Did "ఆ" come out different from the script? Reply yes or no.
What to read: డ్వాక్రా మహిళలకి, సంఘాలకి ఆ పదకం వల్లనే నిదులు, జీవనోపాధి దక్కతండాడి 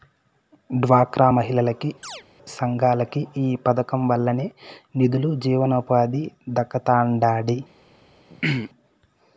yes